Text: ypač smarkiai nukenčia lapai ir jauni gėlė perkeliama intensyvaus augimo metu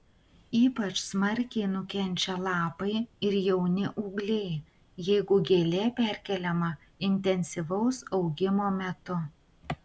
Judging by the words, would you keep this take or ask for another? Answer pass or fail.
fail